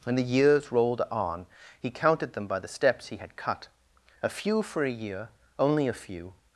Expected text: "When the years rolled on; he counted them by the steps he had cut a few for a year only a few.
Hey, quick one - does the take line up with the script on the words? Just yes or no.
yes